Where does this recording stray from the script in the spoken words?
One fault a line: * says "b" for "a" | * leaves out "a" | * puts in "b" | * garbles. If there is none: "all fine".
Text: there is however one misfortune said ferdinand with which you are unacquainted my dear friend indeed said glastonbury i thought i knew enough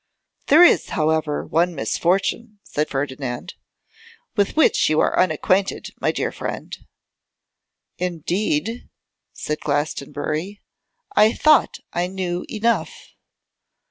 all fine